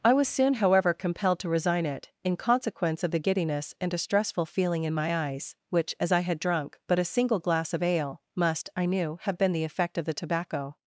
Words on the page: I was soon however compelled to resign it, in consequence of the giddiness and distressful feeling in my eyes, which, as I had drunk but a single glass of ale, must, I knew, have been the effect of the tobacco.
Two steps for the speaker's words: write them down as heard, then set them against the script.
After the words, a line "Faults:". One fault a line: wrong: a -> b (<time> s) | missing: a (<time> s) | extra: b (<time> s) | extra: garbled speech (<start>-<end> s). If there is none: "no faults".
I was soon however compelled to resign it, in consequence of the giddiness and distressful feeling in my eyes, which, as I had drunk but a single glass of ale, must, I knew, have been the effect of the tobacco.
Faults:
no faults